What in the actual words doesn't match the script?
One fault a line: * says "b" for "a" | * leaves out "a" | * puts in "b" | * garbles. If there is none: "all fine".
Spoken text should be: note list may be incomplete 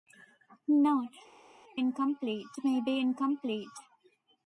* says "incomplete" for "list"